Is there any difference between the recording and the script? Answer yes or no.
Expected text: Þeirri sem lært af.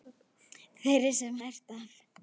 no